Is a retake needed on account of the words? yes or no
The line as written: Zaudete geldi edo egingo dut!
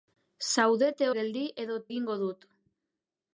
no